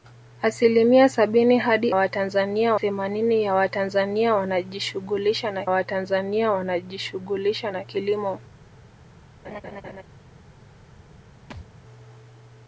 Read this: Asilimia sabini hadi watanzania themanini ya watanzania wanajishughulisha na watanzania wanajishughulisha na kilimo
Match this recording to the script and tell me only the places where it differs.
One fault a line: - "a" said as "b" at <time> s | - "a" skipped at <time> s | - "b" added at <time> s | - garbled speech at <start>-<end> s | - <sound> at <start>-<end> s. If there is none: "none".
- laugh at 9.4-10.0 s
- thud at 11.5-11.7 s